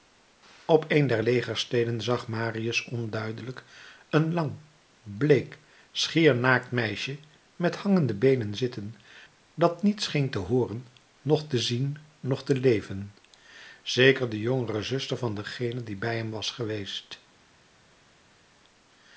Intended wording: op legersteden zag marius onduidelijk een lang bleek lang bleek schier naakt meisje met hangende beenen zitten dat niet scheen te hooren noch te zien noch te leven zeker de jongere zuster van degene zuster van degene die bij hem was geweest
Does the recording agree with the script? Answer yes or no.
no